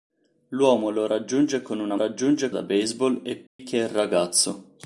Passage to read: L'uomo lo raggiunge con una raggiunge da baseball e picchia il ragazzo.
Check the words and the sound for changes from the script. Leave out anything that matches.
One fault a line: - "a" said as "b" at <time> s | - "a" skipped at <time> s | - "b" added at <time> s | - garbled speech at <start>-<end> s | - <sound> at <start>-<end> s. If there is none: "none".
- dropout at 3.5-3.6 s